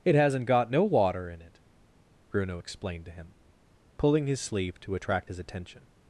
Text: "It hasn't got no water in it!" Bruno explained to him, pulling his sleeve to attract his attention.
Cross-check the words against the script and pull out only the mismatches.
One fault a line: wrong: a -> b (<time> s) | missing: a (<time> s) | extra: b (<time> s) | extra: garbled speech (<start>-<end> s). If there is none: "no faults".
no faults